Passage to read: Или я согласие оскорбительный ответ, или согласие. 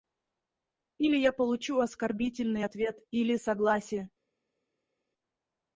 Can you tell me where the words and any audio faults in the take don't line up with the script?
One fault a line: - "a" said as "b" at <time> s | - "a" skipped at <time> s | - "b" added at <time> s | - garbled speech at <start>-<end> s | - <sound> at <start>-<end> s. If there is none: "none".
- "согласие" said as "получу" at 1.3 s